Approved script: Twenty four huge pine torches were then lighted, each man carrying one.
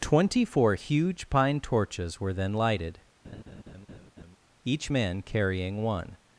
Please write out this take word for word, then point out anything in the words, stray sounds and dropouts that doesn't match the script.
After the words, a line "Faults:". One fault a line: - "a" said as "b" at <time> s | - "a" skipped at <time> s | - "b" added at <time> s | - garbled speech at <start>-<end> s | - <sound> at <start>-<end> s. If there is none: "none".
Twenty four huge pine torches were then lighted, each man carrying one.
Faults:
- laugh at 3.2-4.4 s